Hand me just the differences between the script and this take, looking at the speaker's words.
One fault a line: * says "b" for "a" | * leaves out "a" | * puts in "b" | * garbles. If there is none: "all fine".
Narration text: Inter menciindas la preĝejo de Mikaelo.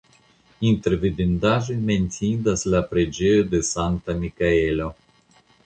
* puts in "vidindaĵoj"
* puts in "Sankta"